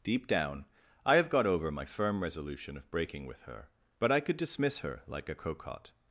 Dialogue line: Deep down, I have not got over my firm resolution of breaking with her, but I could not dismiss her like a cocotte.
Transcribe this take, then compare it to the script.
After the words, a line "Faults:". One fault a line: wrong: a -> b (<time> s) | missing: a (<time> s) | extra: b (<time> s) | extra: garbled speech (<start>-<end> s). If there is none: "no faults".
Deep down, I have got over my firm resolution of breaking with her, but I could dismiss her like a cocotte.
Faults:
missing: not (1.3 s)
missing: not (4.4 s)